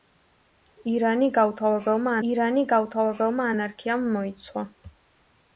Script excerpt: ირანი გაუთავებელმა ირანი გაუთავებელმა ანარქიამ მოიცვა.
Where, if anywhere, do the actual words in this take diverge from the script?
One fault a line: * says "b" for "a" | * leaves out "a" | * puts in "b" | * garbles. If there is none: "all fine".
all fine